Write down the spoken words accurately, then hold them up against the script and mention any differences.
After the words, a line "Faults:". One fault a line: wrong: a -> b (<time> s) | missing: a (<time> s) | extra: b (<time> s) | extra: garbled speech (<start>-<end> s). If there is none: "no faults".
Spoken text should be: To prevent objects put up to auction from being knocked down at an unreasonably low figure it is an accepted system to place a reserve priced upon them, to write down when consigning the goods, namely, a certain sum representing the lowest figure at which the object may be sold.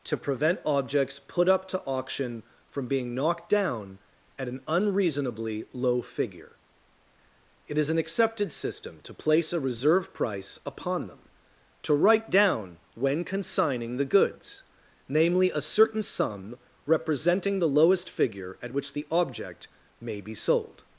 To prevent objects put up to auction from being knocked down at an unreasonably low figure it is an accepted system to place a reserve price upon them, to write down when consigning the goods, namely, a certain sum representing the lowest figure at which the object may be sold.
Faults:
wrong: priced -> price (10.1 s)